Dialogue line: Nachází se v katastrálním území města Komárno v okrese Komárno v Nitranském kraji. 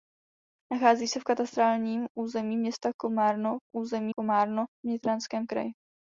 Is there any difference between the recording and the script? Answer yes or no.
yes